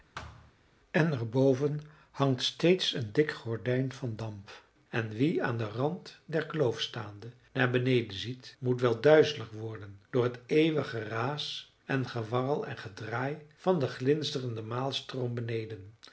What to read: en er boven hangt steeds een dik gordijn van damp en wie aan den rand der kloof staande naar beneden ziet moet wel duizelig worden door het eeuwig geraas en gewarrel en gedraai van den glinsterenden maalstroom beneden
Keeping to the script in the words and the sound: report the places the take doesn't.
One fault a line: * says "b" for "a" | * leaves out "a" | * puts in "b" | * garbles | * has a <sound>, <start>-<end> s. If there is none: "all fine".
* has a thud, 0.1-0.5 s